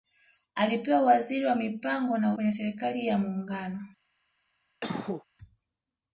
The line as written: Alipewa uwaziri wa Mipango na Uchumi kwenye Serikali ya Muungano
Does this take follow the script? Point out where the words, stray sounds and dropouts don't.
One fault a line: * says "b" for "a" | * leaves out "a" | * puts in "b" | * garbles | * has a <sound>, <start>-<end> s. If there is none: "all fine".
* leaves out "Uchumi"
* has a cough, 4.8-5.2 s